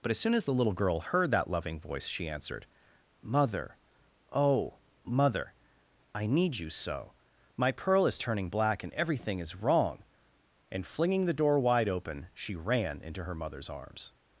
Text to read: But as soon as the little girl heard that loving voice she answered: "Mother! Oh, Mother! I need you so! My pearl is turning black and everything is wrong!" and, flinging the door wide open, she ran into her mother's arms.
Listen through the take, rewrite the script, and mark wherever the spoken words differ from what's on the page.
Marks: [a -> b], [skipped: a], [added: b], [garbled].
But as soon as the little girl heard that loving voice she answered: "Mother! Oh, Mother! I need you so! My pearl is turning black and everything is wrong!" and, flinging the door wide open, she ran into her mother's arms.